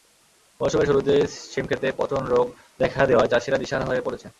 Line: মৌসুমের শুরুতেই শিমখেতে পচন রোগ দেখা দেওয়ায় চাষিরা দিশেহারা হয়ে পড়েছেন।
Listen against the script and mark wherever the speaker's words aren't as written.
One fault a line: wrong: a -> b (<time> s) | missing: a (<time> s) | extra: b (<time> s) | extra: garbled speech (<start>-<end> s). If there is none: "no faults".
no faults